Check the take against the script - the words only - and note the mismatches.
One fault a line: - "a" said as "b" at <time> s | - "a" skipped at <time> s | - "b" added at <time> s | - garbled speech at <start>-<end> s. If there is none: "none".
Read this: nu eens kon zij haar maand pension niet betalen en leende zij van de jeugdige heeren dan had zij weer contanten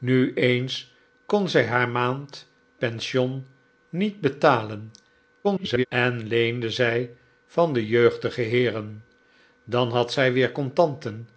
- garbled speech at 5.4-5.9 s